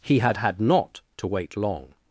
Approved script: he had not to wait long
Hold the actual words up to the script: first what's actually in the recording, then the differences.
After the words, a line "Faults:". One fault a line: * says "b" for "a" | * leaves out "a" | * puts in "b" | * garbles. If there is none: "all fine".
he had had not to wait long
Faults:
* puts in "had"